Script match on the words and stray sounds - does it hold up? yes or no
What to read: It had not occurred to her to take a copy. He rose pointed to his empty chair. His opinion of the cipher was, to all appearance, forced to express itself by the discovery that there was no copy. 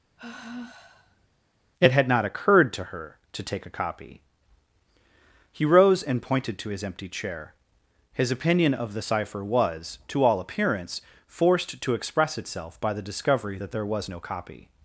no